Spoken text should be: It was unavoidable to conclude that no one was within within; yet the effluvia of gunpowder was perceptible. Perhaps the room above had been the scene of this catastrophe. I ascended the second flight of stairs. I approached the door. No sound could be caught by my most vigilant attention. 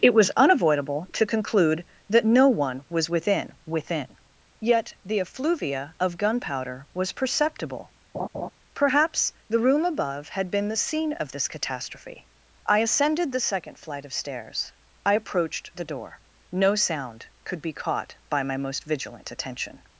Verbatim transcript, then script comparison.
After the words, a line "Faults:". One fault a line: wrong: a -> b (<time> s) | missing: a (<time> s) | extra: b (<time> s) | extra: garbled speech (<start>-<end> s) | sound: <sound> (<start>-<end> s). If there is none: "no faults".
It was unavoidable to conclude that no one was within within; yet the effluvia of gunpowder was perceptible. Perhaps the room above had been the scene of this catastrophe. I ascended the second flight of stairs. I approached the door. No sound could be caught by my most vigilant attention.
Faults:
sound: laugh (8.1-8.5 s)